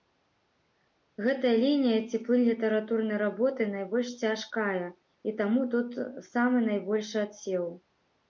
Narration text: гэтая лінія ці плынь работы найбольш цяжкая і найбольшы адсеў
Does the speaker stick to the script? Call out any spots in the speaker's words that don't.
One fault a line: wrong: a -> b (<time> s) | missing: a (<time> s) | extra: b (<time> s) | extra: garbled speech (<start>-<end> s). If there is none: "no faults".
extra: літаратурнай (2.5 s)
extra: таму тут самы (5.4 s)